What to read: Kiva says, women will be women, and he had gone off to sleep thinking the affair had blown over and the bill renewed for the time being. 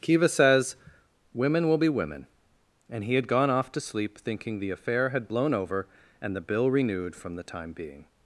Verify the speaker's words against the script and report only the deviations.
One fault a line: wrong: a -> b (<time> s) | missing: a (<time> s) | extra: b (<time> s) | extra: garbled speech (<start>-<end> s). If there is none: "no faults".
wrong: for -> from (7.2 s)